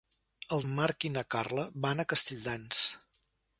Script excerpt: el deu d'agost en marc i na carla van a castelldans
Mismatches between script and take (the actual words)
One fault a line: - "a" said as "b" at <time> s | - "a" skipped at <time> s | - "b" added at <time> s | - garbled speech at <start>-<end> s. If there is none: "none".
- "deu d'agost" skipped at 0.6 s